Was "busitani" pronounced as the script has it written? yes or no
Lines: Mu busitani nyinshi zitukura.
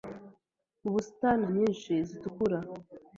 yes